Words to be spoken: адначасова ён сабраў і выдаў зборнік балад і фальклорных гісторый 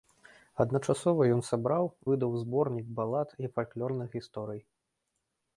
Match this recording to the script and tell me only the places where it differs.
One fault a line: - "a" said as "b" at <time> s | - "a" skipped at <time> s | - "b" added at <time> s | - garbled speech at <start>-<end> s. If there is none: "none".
- "і" skipped at 1.9 s